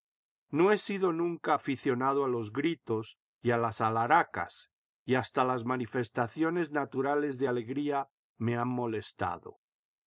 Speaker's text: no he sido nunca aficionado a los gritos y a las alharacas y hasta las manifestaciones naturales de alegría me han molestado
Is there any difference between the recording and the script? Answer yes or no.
no